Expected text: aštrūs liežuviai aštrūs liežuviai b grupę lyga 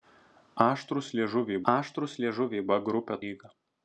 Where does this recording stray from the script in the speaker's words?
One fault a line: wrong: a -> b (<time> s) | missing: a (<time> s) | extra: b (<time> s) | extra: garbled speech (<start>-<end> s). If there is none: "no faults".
no faults